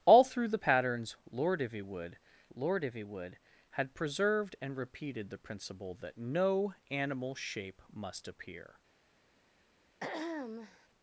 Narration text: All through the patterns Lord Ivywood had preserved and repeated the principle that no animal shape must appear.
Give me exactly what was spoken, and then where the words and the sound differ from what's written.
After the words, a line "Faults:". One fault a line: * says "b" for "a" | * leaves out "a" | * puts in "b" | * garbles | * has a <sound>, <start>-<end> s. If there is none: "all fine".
All through the patterns Lord Ivywood Lord Ivywood had preserved and repeated the principle that no animal shape must appear.
Faults:
* puts in "Lord Ivywood"
* has a throat clearing, 10.0-10.9 s